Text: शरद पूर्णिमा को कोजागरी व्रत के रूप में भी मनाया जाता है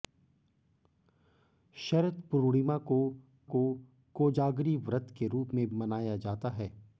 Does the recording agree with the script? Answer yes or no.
no